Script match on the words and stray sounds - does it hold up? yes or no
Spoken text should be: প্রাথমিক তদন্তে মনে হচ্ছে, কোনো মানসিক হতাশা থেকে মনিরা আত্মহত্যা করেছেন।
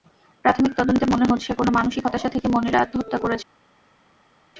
yes